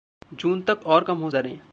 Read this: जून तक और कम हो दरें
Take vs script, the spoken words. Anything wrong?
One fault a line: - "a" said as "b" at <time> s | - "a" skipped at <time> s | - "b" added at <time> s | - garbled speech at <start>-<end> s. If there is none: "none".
none